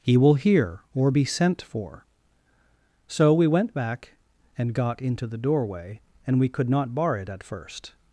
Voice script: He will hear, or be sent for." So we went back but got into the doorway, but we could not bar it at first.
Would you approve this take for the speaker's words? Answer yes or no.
no